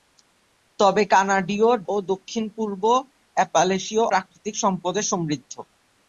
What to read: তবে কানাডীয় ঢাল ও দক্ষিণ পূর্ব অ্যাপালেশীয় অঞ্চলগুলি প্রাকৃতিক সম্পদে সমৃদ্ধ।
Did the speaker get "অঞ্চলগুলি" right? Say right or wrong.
wrong